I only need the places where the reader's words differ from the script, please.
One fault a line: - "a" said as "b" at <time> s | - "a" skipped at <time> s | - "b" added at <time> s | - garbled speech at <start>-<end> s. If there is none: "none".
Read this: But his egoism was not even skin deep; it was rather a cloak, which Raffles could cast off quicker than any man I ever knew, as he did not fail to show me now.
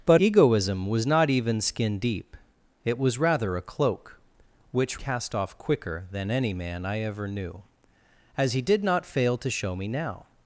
- "his" skipped at 0.2 s
- "Raffles could" skipped at 5.0 s